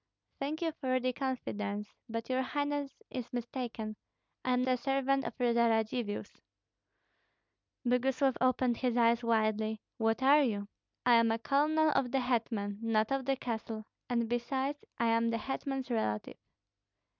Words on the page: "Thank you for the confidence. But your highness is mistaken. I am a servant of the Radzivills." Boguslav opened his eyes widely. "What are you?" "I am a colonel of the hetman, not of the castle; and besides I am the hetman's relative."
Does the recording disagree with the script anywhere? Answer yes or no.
no